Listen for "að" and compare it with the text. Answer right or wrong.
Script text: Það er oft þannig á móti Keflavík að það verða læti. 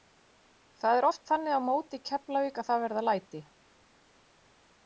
right